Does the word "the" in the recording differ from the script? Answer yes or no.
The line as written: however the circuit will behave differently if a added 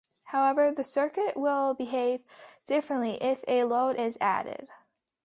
no